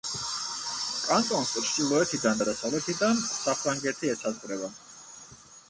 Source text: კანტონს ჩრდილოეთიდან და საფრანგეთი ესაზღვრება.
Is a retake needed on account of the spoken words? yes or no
yes